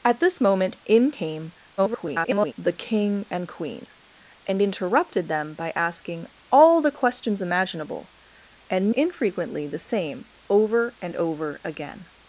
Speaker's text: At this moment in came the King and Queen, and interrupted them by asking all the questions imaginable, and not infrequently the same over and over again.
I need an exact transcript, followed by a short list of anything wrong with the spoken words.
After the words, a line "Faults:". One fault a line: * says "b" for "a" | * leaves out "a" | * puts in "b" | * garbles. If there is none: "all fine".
At this moment in came [garbled] the King and Queen, and interrupted them by asking all the questions imaginable, and infrequently the same over and over again.
Faults:
* garbles
* leaves out "not"